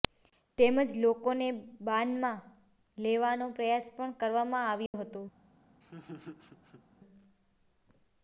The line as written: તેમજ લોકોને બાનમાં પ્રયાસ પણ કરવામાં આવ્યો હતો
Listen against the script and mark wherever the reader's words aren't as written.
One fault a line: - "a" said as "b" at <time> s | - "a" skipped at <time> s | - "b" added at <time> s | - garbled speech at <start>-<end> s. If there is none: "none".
- "લેવાનો" added at 3.0 s